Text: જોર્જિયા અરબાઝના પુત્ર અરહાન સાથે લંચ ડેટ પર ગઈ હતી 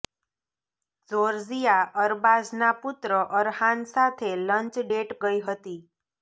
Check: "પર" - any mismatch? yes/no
yes